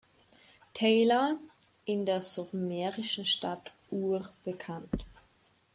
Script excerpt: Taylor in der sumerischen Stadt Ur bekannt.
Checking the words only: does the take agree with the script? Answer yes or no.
yes